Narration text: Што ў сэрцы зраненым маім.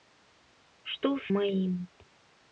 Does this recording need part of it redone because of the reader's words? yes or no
yes